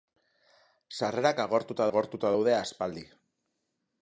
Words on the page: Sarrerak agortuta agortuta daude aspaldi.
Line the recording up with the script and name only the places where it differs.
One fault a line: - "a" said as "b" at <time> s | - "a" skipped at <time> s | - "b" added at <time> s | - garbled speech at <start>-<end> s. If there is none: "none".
none